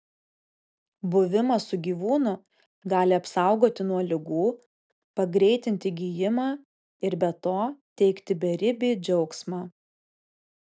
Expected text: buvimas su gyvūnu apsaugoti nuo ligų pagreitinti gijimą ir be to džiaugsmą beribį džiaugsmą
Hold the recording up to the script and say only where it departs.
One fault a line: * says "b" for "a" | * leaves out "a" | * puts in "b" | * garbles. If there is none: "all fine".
* puts in "gali"
* says "teikti" for "džiaugsmą"